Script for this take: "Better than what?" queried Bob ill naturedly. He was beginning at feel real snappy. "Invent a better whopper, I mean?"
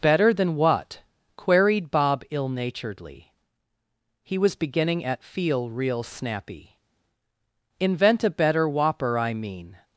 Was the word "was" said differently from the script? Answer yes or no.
no